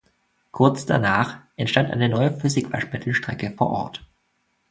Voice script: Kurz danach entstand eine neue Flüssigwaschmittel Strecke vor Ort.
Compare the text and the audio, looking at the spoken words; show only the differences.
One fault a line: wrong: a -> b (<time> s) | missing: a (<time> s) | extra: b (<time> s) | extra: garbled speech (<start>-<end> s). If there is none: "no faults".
no faults